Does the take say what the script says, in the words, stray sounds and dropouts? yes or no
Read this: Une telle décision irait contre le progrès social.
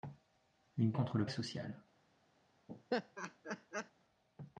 no